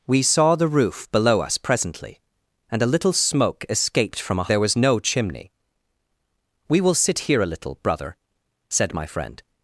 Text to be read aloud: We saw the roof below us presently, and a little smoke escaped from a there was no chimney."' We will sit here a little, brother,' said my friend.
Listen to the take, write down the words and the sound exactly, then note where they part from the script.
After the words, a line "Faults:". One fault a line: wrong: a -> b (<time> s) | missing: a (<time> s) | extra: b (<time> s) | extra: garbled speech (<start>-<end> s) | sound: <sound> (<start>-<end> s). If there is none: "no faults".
We saw the roof below us presently, and a little smoke escaped from a there was no chimney."' We will sit here a little, brother,' said my friend.
Faults:
no faults